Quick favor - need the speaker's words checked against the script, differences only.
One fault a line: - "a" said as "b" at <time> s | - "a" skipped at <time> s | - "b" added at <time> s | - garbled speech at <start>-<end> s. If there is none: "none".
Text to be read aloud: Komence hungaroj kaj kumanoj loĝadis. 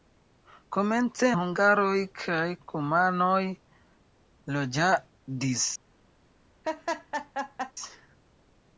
none